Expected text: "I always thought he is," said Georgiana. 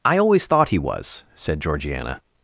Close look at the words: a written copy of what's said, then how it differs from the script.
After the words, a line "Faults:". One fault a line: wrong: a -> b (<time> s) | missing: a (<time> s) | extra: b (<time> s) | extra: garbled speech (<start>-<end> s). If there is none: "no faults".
"I always thought he was," said Georgiana.
Faults:
wrong: is -> was (0.8 s)